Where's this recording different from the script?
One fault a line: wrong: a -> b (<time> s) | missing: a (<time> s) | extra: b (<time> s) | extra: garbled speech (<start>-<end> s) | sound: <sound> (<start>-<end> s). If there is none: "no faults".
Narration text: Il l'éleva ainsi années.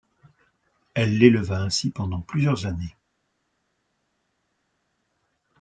wrong: Il -> Elle (0.9 s)
extra: pendant plusieurs (1.9 s)